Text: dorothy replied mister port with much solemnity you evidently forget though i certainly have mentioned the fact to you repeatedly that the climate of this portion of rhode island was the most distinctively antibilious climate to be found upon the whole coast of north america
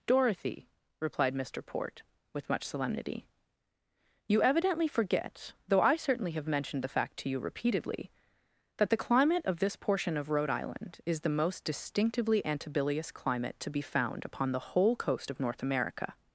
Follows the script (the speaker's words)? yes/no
no